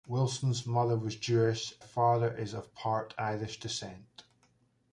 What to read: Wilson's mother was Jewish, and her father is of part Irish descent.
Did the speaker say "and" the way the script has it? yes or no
no